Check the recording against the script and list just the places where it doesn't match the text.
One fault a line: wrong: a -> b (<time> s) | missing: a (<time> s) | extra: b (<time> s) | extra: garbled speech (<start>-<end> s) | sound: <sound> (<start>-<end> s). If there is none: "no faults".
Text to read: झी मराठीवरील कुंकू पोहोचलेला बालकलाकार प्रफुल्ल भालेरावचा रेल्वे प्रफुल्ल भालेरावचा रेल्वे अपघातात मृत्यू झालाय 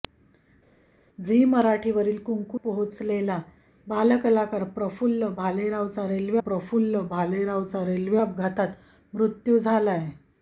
no faults